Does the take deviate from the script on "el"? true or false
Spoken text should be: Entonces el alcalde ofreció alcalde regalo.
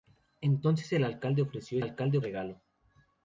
false